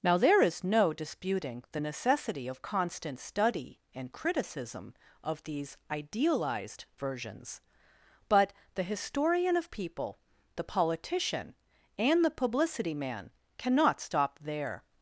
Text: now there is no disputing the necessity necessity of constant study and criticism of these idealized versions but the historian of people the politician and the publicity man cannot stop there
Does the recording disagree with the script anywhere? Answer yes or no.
yes